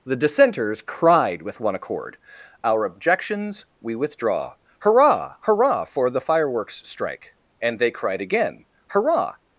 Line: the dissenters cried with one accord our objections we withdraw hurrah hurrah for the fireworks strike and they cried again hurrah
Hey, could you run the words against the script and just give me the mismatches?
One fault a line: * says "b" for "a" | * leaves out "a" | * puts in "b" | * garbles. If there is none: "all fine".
all fine